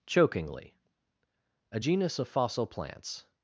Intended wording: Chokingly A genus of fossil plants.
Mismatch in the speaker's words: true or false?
false